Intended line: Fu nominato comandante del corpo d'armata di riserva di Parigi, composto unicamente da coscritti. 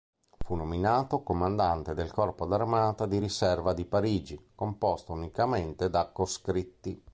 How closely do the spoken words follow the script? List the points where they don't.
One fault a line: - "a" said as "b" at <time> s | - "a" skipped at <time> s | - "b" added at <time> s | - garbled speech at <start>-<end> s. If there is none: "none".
none